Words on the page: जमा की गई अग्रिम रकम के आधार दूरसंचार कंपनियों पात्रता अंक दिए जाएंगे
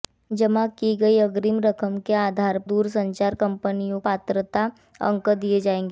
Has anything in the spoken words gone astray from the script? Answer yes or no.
no